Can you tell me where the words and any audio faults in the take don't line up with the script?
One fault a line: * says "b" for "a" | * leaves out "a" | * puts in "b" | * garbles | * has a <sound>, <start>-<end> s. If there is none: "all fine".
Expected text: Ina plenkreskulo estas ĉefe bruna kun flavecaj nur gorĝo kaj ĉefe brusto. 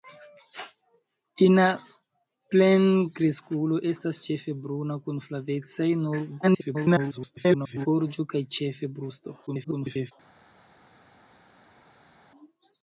* garbles
* garbles